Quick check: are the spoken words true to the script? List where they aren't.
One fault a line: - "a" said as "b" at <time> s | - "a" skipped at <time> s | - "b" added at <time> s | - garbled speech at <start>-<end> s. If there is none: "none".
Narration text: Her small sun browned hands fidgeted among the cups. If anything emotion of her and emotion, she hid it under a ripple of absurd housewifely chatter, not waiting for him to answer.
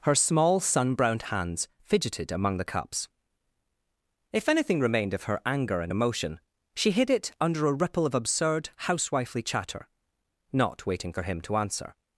- "emotion" said as "remained" at 4.8 s
- "anger" added at 5.5 s